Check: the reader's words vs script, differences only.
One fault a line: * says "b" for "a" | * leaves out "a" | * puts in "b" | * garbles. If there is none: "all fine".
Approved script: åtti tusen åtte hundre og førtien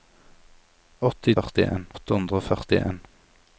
* says "førtien" for "tusen"